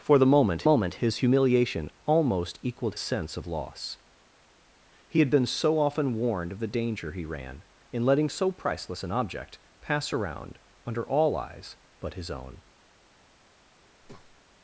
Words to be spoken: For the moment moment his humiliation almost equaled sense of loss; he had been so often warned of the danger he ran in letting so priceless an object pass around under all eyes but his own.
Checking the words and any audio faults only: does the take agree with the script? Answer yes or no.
no